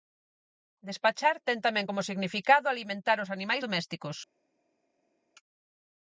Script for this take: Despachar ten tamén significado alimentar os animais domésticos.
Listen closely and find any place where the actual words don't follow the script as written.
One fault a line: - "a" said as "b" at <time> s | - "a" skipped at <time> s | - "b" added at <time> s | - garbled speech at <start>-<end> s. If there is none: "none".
- "como" added at 1.9 s